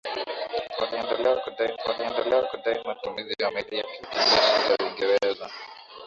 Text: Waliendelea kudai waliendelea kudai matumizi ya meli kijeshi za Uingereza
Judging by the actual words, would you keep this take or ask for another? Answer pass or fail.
pass